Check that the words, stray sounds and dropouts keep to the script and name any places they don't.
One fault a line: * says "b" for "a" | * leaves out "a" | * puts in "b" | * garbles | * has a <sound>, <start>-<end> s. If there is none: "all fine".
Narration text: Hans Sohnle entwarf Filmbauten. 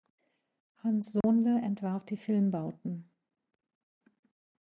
* has a dropout, 1.2-1.2 s
* puts in "die"